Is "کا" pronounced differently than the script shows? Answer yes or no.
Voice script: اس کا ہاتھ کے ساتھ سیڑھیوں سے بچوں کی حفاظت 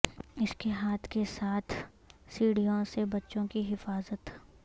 yes